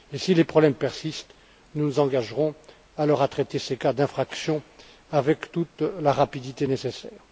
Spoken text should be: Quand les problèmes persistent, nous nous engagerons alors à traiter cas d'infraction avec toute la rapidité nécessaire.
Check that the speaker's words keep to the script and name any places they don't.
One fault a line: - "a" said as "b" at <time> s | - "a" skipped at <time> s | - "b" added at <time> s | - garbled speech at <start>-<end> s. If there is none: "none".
- "Quand" said as "Si" at 0.1 s
- "ces" added at 3.6 s